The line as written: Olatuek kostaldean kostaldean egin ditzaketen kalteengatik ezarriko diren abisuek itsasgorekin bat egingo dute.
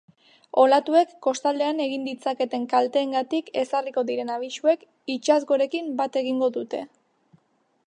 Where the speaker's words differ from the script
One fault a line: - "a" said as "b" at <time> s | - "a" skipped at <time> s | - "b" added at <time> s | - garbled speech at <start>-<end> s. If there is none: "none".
- "kostaldean" skipped at 1.8 s